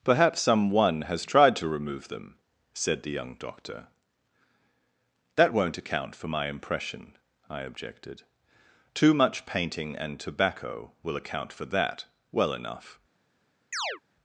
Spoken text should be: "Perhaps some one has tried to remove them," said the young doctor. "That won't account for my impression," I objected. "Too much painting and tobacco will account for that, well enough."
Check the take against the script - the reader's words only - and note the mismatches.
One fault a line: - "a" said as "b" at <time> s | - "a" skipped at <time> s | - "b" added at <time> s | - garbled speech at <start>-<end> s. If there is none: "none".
none